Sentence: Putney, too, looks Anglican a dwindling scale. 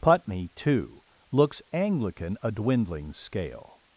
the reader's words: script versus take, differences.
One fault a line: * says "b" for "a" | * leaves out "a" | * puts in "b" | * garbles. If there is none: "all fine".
all fine